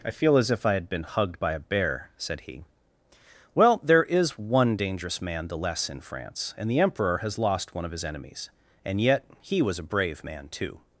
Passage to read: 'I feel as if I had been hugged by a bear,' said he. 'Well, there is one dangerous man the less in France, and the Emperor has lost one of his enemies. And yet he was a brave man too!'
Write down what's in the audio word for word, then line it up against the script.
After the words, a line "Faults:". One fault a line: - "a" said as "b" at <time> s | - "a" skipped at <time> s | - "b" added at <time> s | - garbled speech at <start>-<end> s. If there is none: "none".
'I feel as if I had been hugged by a bear,' said he. 'Well, there is one dangerous man the less in France, and the Emperor has lost one of his enemies. And yet he was a brave man too!'
Faults:
none